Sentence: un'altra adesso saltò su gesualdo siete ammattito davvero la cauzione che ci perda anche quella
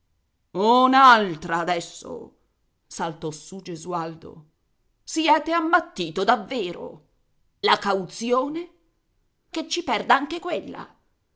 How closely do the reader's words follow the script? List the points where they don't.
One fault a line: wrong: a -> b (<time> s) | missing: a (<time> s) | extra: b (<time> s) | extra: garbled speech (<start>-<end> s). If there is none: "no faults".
no faults